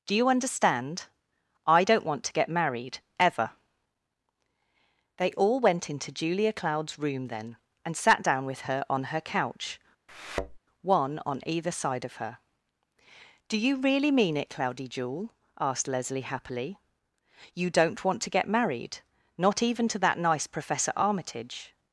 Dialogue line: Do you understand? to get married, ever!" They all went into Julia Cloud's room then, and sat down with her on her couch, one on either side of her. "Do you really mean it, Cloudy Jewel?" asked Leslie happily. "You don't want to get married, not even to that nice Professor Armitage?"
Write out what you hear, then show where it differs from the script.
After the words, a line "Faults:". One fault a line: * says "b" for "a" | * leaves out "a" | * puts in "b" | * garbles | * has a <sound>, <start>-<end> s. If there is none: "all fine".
Do you understand? I don't want to get married, ever!" They all went into Julia Cloud's room then, and sat down with her on her couch, one on either side of her. "Do you really mean it, Cloudy Jewel?" asked Leslie happily. "You don't want to get married, not even to that nice Professor Armitage?"
Faults:
* puts in "I don't want"
* has a thud, 10.1-10.6 s